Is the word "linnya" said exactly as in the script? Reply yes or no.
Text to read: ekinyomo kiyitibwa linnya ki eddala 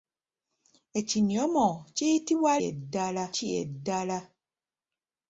no